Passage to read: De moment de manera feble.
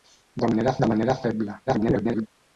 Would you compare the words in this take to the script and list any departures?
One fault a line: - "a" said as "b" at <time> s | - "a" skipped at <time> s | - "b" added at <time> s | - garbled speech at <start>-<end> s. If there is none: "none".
- "moment" said as "manera" at 0.5 s
- garbled speech at 1.7-2.3 s